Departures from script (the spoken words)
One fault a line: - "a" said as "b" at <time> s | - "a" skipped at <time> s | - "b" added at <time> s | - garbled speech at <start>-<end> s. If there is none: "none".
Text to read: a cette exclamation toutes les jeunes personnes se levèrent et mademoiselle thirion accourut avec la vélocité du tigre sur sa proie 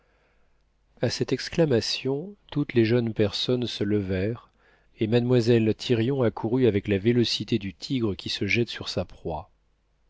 - "qui se jette" added at 8.2 s